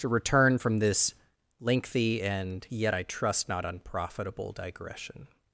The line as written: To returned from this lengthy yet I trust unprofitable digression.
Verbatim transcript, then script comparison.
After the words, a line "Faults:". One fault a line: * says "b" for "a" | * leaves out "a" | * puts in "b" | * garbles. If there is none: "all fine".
To return from this lengthy and yet I trust not unprofitable digression.
Faults:
* says "return" for "returned"
* puts in "and"
* puts in "not"